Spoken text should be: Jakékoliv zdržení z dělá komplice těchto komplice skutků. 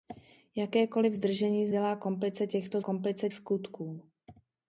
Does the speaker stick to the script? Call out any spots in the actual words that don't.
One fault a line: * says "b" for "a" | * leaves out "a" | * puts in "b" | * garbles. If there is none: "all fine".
all fine